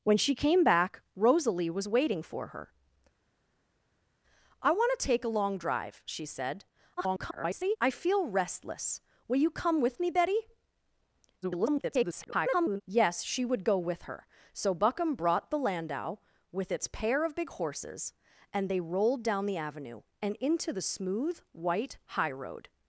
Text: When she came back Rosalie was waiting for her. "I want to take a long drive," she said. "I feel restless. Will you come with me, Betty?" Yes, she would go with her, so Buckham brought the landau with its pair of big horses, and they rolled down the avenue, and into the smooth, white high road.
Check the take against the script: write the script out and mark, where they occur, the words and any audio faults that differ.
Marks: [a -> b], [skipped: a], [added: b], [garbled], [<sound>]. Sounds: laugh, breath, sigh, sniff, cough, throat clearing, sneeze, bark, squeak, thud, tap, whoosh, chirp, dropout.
When she came back Rosalie was waiting for her. "I want to take a long drive," she said. [garbled] "I feel restless. Will you come with me, Betty?" [garbled] Yes, she would go with her, so Buckham brought the landau with its pair of big horses, and they rolled down the avenue, and into the smooth, white high road.